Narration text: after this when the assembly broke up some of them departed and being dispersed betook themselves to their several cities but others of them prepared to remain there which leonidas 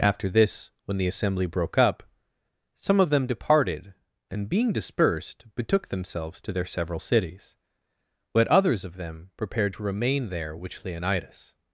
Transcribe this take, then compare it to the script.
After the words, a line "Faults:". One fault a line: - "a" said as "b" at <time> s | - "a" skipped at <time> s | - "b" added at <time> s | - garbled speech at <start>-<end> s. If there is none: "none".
after this when the assembly broke up some of them departed and being dispersed betook themselves to their several cities but others of them prepared to remain there which leonidas
Faults:
none